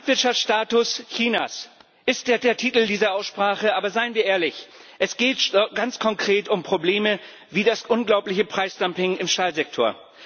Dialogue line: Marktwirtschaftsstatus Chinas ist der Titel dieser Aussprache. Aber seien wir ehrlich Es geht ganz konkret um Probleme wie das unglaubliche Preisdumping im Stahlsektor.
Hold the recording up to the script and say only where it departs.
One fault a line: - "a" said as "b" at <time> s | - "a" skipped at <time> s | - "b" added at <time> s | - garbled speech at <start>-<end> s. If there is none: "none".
- "der" added at 2.4 s